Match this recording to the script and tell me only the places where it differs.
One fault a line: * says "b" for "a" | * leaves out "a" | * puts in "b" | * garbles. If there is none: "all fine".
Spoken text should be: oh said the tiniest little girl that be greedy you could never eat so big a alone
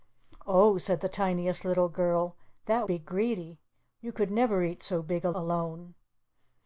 all fine